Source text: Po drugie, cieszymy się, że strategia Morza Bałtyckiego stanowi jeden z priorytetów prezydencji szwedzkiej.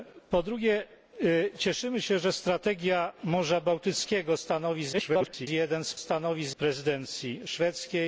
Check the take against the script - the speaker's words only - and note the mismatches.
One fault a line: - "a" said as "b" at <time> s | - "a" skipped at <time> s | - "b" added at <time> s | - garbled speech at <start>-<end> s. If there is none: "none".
- garbled speech at 4.9-5.5 s
- "priorytetów" said as "stanowi" at 6.0 s